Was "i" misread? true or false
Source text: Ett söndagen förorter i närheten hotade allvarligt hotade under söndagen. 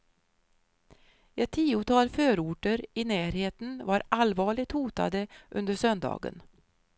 false